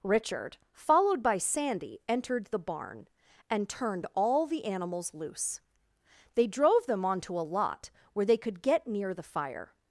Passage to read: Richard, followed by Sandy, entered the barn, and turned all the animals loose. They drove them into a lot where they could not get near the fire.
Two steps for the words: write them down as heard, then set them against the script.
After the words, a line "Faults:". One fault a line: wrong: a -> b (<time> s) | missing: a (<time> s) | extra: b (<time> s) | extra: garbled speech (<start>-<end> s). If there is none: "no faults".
Richard, followed by Sandy, entered the barn, and turned all the animals loose. They drove them onto a lot where they could get near the fire.
Faults:
wrong: into -> onto (7.0 s)
missing: not (8.6 s)